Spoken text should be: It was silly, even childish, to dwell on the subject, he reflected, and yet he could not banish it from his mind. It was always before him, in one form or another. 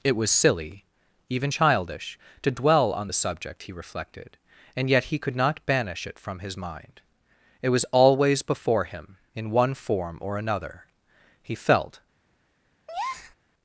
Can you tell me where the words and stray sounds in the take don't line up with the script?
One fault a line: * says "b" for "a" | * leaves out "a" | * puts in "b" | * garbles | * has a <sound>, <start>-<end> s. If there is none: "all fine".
* puts in "He felt"
* has a breath, 12.9-13.3 s